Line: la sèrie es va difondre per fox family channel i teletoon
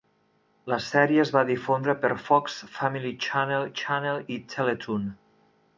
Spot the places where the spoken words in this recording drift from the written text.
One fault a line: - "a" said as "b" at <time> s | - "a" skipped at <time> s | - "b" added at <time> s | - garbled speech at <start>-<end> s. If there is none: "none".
- "channel" added at 3.8 s